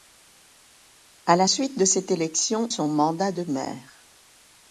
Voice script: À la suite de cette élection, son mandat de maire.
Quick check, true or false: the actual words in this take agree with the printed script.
true